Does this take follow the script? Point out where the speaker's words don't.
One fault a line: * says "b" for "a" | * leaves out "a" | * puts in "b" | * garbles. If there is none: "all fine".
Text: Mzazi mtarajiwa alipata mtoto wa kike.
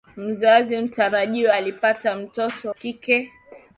* leaves out "wa"